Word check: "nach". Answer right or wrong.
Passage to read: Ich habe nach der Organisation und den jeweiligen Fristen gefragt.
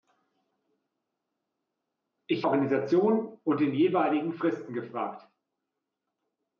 wrong